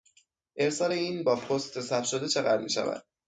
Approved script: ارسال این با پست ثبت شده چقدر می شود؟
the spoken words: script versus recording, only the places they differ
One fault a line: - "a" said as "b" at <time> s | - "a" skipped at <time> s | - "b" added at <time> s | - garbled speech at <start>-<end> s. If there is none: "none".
none